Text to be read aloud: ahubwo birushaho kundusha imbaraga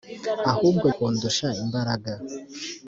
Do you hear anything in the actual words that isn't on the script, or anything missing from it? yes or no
yes